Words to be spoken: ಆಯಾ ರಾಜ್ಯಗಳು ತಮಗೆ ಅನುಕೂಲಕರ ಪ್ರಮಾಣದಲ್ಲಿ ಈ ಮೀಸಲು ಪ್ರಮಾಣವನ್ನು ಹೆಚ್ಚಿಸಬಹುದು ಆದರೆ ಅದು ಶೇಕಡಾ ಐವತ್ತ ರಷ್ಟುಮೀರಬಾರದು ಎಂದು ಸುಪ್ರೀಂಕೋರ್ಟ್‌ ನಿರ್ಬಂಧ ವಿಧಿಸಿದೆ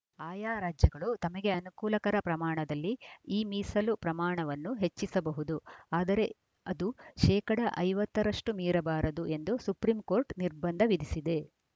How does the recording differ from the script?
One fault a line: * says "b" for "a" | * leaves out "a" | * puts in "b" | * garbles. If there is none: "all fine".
all fine